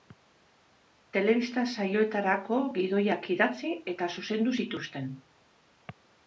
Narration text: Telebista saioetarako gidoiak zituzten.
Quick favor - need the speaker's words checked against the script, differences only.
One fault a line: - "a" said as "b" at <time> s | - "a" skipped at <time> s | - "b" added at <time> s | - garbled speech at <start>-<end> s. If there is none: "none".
- "idatzi eta zuzendu" added at 3.4 s